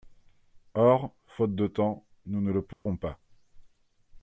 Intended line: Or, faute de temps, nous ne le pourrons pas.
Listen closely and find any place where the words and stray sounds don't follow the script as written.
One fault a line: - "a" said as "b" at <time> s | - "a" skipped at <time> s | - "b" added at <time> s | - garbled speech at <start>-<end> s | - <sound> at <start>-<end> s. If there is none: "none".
- dropout at 2.7-2.9 s